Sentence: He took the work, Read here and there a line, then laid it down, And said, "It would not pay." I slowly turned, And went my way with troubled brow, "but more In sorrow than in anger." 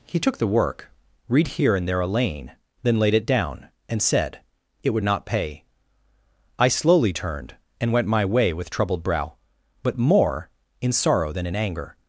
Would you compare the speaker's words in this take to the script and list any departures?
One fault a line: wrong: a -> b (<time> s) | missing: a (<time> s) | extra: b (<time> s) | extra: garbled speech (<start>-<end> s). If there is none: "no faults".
wrong: line -> lane (2.1 s)